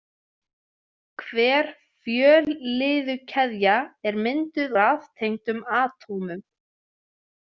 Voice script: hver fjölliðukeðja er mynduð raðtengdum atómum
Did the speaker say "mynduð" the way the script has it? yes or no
yes